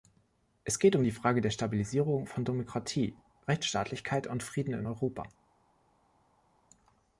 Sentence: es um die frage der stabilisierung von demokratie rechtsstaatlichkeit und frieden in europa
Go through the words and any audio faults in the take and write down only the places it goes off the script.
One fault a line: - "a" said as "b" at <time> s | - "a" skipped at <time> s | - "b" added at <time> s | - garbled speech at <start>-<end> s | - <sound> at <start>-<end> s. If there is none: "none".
- "geht" added at 0.8 s